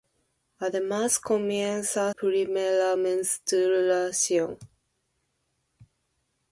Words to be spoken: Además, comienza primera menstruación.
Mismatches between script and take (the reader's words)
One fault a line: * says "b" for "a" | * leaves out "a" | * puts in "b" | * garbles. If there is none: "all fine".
all fine